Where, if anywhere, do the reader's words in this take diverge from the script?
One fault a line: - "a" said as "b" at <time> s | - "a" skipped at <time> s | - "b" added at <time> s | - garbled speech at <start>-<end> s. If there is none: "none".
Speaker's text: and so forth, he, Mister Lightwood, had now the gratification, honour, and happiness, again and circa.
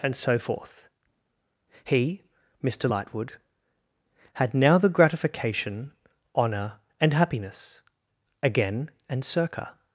none